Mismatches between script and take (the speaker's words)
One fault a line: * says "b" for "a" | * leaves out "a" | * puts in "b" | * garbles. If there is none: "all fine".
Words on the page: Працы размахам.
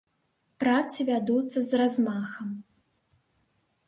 * puts in "вядуцца з"